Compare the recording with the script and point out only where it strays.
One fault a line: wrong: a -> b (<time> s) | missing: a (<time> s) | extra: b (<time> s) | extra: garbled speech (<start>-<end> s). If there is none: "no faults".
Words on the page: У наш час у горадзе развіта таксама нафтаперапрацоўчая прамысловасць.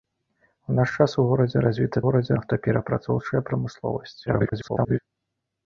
wrong: таксама -> горадзе (2.1 s)
extra: garbled speech (4.3-5.0 s)